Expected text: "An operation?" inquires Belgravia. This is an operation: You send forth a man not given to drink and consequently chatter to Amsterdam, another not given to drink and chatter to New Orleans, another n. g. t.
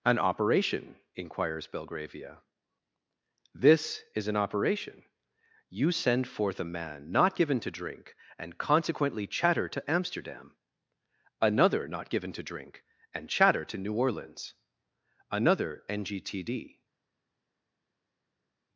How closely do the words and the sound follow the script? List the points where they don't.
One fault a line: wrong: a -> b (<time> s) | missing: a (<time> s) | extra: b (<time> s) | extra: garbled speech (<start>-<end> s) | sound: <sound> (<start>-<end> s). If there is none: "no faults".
extra: d (16.4 s)